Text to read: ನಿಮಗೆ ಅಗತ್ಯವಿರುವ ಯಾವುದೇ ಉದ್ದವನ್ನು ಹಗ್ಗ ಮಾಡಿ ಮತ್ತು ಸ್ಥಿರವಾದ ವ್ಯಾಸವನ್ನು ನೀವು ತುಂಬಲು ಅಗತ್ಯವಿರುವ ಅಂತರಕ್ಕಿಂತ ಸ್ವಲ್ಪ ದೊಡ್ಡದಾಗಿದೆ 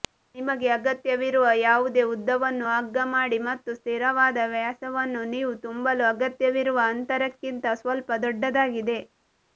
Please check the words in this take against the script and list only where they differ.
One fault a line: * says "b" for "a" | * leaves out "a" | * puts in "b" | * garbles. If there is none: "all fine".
all fine